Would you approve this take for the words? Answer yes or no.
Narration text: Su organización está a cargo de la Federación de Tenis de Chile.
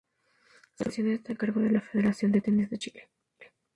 yes